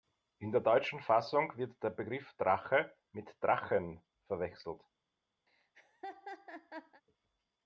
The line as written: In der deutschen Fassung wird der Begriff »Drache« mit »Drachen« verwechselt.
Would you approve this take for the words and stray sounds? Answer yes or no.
no